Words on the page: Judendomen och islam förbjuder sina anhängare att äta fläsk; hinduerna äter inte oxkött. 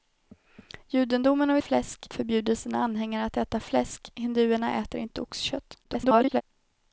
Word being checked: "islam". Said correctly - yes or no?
no